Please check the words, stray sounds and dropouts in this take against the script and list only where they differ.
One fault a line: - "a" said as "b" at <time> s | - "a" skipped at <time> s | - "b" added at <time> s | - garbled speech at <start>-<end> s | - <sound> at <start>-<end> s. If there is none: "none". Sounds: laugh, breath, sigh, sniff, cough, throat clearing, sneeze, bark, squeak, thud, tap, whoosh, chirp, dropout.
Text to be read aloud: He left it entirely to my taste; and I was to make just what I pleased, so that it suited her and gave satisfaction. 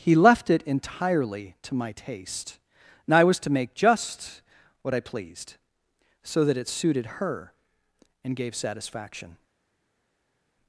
none